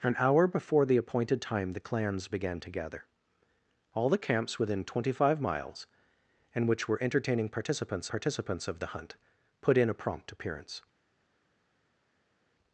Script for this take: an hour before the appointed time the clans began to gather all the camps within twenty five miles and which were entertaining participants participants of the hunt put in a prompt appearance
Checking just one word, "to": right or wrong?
right